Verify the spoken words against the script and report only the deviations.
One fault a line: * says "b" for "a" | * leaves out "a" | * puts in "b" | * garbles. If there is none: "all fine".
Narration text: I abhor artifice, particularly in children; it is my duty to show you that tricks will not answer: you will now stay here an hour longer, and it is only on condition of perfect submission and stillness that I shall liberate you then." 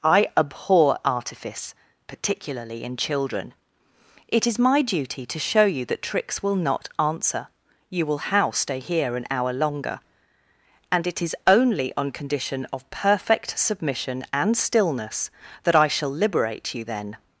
* says "how" for "now"